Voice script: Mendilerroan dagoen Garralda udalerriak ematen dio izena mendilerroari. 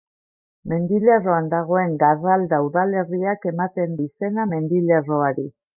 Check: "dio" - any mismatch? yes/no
yes